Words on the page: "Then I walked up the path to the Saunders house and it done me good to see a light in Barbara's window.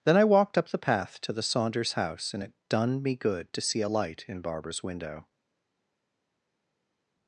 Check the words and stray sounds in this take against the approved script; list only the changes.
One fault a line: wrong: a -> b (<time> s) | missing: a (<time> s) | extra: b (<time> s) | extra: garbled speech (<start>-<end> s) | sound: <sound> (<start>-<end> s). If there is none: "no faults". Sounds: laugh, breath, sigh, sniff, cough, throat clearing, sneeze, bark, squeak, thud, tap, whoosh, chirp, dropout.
no faults